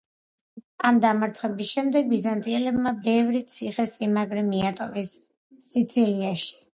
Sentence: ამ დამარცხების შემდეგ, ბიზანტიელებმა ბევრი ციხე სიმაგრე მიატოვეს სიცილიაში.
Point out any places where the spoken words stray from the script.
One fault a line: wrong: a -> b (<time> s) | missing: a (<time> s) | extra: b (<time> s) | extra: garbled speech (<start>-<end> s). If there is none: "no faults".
no faults